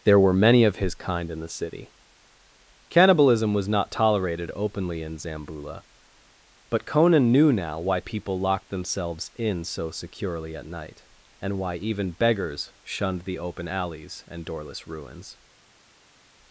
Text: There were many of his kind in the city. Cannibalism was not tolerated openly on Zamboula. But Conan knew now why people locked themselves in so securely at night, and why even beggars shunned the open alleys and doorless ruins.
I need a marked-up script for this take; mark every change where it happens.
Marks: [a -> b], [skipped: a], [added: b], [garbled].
There were many of his kind in the city. Cannibalism was not tolerated openly [on -> in] Zamboula. But Conan knew now why people locked themselves in so securely at night, and why even beggars shunned the open alleys and doorless ruins.